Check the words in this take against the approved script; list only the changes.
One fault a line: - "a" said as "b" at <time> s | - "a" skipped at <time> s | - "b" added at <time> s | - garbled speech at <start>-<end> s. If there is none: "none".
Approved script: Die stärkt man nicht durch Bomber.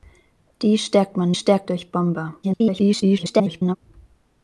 - "nicht" said as "stärkt" at 1.3 s
- garbled speech at 2.4-3.8 s